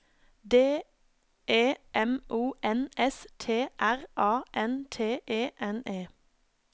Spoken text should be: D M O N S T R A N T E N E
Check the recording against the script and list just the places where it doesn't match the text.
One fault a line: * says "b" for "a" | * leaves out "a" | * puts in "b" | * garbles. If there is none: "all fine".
* puts in "E"